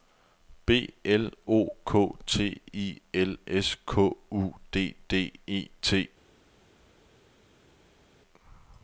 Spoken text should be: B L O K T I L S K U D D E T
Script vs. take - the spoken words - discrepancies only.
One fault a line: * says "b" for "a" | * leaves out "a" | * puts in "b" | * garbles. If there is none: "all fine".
all fine